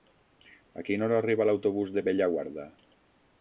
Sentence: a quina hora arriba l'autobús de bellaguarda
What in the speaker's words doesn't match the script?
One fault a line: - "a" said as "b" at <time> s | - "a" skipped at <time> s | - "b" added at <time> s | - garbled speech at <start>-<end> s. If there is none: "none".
none